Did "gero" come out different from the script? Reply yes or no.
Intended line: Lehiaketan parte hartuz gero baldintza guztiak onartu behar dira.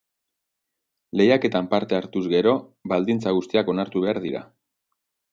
no